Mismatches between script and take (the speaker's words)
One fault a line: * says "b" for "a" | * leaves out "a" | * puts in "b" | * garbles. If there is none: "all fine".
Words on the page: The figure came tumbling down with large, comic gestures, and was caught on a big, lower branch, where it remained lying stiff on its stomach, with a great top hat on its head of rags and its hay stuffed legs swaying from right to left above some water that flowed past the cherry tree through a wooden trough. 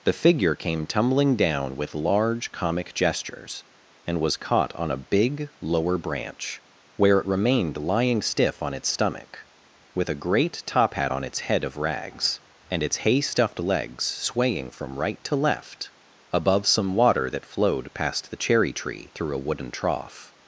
all fine